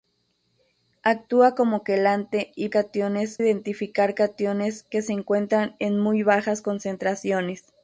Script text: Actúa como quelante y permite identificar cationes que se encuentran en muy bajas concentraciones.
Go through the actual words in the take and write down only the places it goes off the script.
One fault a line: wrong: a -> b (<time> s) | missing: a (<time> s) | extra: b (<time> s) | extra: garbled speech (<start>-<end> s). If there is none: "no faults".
wrong: permite -> cationes (2.7 s)